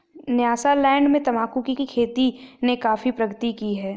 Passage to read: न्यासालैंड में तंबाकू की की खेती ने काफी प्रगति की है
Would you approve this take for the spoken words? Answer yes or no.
yes